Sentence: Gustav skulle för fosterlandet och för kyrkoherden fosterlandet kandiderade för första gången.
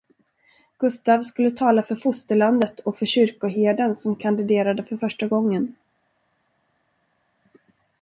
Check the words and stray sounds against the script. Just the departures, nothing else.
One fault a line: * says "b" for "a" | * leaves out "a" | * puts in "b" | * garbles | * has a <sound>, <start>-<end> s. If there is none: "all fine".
* puts in "tala"
* says "som" for "fosterlandet"